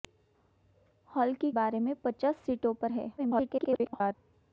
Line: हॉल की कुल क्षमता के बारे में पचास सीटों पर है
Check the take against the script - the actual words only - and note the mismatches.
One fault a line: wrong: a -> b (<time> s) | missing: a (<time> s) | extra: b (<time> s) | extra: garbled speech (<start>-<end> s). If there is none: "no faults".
missing: कुल क्षमता के (1.5 s)
extra: garbled speech (3.2-4.1 s)